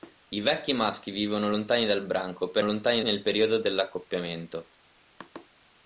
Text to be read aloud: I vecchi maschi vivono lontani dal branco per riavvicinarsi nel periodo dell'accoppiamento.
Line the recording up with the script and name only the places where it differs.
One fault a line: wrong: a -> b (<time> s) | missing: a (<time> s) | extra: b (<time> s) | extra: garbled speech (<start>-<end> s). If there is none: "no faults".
wrong: riavvicinarsi -> lontani (2.6 s)